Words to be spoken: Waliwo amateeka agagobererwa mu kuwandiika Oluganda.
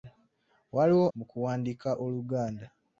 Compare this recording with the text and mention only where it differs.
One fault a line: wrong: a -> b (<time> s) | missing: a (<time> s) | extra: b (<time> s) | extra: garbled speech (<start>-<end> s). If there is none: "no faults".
missing: amateeka agagobererwa (1.1 s)